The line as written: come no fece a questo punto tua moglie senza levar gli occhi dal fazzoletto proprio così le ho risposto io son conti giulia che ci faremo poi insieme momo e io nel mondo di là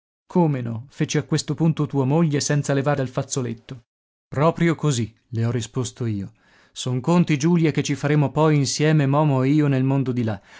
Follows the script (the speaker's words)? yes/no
no